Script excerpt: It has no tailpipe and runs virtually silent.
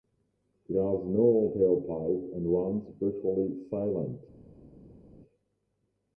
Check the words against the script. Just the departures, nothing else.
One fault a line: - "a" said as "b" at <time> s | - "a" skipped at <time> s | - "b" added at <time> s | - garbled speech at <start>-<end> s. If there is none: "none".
none